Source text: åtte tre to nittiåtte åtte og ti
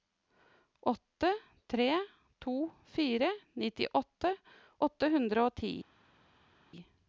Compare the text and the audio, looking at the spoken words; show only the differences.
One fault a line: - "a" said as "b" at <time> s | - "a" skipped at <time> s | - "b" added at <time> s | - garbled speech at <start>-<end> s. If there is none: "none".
- "fire" added at 2.8 s
- "hundre" added at 5.2 s